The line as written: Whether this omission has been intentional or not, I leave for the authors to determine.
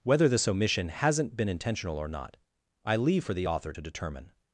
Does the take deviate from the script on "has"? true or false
true